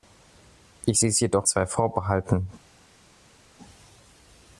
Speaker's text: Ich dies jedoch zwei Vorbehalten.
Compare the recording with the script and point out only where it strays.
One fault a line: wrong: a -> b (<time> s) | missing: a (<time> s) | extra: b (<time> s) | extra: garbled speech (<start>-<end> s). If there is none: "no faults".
no faults